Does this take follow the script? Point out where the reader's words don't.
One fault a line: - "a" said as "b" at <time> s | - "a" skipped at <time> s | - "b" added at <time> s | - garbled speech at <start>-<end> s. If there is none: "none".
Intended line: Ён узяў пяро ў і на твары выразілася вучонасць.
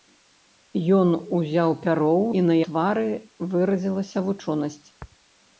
none